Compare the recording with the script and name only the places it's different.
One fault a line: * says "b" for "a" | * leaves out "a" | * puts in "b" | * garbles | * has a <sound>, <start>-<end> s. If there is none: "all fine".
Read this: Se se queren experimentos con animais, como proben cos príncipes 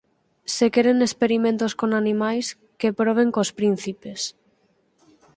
* leaves out "se"
* says "que" for "como"